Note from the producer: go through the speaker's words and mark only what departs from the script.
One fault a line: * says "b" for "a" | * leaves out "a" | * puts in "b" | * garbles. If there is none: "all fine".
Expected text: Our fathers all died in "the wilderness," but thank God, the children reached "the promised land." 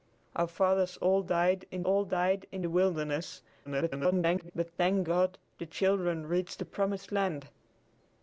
* puts in "all died in"
* garbles